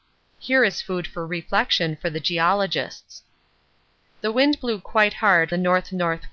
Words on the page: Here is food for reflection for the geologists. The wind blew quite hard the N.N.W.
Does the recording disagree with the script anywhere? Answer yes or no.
no